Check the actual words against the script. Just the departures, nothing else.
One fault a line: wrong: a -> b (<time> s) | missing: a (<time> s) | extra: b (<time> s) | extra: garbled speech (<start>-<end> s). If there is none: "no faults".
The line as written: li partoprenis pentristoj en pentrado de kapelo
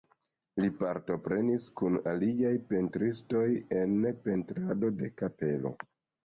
extra: kun aliaj (1.8 s)